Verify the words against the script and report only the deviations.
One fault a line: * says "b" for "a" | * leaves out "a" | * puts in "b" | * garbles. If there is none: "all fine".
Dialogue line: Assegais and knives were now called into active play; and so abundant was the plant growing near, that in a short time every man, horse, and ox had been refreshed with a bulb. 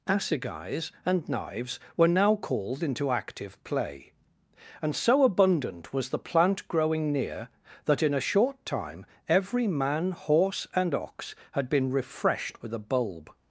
all fine